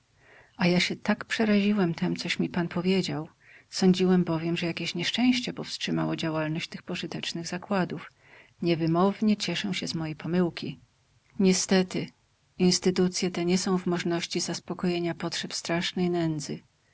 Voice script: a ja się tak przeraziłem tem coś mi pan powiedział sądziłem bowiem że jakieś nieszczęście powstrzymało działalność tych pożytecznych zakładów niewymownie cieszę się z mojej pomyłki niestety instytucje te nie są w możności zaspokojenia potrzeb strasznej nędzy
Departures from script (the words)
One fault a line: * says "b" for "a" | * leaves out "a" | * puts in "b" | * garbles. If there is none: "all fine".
all fine